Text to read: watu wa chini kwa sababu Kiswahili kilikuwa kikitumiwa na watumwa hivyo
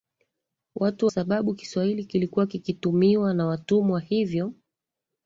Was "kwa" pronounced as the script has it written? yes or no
no